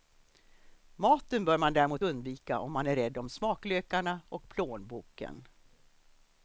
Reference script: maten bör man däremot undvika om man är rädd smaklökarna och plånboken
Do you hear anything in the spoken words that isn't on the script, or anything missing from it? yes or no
yes